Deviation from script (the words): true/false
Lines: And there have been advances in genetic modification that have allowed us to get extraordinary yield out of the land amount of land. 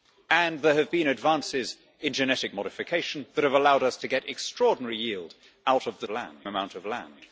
false